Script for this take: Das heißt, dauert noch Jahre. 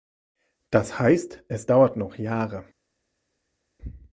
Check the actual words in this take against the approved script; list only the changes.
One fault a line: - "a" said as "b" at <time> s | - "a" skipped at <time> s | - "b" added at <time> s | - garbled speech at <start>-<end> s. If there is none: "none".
- "es" added at 1.5 s